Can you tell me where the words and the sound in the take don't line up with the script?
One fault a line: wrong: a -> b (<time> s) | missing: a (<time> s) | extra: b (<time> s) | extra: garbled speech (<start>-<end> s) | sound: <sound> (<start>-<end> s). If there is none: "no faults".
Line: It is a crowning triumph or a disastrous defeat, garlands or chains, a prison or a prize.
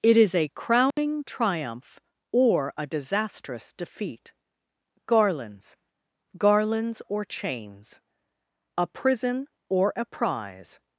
sound: dropout (0.9-1.0 s)
extra: garlands (6.4 s)